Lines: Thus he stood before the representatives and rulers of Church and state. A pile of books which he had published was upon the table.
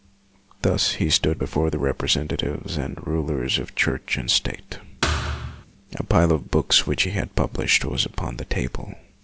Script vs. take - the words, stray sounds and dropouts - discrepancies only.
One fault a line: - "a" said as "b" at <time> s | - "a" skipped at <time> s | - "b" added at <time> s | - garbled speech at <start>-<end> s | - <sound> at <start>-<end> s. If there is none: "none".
- thud at 5.0-5.7 s